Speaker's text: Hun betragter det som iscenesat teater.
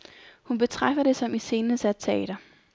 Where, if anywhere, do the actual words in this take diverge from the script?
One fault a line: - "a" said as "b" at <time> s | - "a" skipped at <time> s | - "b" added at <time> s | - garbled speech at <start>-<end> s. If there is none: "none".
none